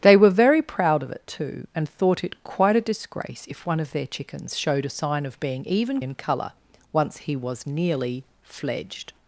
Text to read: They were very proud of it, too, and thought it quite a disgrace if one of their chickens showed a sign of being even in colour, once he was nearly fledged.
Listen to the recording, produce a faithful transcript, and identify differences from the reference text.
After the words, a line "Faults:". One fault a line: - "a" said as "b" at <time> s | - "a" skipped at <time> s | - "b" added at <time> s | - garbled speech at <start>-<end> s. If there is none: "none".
They were very proud of it, too, and thought it quite a disgrace if one of their chickens showed a sign of being even in colour, once he was nearly fledged.
Faults:
none